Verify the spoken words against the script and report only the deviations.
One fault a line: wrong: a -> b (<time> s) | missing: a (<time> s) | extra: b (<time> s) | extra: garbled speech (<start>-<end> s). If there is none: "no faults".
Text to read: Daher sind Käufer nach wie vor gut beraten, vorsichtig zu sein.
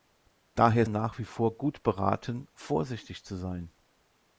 missing: sind Käufer (0.9 s)